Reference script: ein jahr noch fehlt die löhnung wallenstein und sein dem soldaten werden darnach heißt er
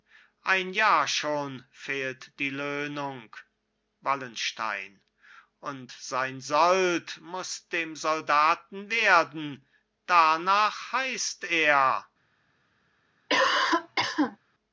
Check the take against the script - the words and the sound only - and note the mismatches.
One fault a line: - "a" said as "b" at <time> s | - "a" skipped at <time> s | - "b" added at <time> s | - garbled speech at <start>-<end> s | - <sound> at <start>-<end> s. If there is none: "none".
- "noch" said as "schon" at 1.1 s
- "sold muß" added at 6.4 s
- cough at 13.3-14.4 s